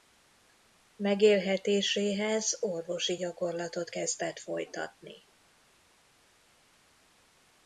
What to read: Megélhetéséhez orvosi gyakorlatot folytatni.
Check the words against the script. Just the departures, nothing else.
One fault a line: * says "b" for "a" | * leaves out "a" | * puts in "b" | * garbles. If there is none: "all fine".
* puts in "kezdett"